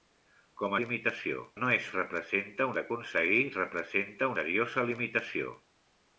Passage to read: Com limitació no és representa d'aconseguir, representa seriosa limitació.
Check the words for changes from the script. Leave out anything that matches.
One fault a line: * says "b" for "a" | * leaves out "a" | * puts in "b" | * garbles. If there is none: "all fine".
all fine